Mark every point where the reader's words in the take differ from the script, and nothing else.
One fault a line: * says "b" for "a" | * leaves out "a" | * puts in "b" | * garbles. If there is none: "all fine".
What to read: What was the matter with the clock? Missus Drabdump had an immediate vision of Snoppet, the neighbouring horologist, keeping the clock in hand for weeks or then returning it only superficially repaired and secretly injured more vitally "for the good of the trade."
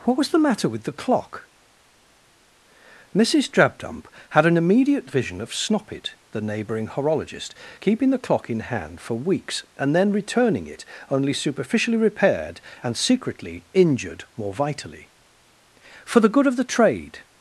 * says "and" for "or"